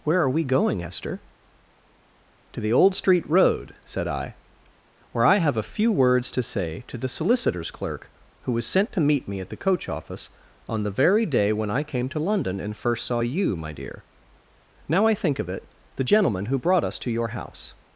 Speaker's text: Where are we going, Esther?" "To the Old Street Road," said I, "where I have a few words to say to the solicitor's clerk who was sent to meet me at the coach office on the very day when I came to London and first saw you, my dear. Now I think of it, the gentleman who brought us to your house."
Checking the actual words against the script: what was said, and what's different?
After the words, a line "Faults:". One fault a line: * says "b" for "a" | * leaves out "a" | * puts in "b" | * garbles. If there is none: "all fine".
Where are we going, Esther?" "To the Old Street Road," said I, "where I have a few words to say to the solicitor's clerk who was sent to meet me at the coach office on the very day when I came to London and first saw you, my dear. Now I think of it, the gentleman who brought us to your house."
Faults:
all fine